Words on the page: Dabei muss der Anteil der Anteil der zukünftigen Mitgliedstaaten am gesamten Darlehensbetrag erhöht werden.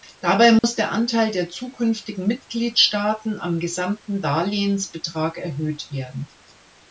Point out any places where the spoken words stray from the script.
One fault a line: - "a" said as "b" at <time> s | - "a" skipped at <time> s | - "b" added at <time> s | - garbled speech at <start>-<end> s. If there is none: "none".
- "Anteil der" skipped at 1.5 s